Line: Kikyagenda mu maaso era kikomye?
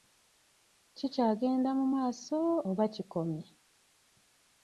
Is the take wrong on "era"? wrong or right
wrong